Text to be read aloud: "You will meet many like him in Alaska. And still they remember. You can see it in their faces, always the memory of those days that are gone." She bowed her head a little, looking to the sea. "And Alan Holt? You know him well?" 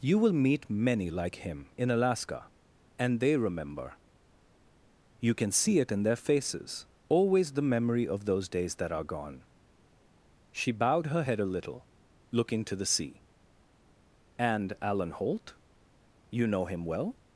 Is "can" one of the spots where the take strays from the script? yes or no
no